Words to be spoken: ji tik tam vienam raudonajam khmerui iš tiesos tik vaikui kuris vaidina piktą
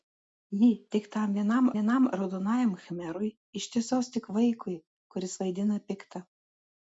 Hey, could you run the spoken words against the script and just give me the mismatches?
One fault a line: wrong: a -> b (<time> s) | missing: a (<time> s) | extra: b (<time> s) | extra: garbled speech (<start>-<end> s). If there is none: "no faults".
extra: vienam (1.8 s)